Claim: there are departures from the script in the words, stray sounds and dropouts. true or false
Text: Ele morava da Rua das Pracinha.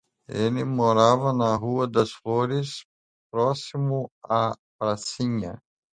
true